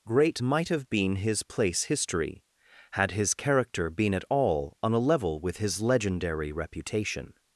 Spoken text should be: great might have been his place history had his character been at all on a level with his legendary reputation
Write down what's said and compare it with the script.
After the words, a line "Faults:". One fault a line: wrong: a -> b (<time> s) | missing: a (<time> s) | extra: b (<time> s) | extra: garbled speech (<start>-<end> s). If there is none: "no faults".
great might have been his place history had his character been at all on a level with his legendary reputation
Faults:
no faults